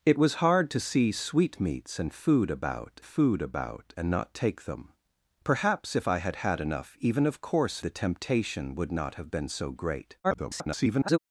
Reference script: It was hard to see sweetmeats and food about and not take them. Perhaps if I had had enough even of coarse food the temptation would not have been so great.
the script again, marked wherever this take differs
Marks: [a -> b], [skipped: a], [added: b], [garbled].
It was hard to see sweetmeats and food about [added: food about] and not take them. Perhaps if I had had enough even of coarse [skipped: food] the temptation would not have been so great. [garbled]